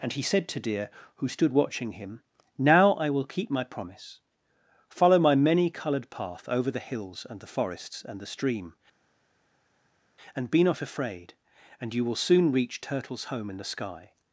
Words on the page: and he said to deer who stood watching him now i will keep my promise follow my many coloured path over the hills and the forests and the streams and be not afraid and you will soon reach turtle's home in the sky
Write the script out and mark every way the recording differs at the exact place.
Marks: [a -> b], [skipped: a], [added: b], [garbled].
and he said to deer who stood watching him now i will keep my promise follow my many coloured path over the hills and the forests and the [streams -> stream] and be not afraid and you will soon reach turtle's home in the sky